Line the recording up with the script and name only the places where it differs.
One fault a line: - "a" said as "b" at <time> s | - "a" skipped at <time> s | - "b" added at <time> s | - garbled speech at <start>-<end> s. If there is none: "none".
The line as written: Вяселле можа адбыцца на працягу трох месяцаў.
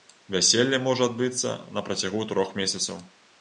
none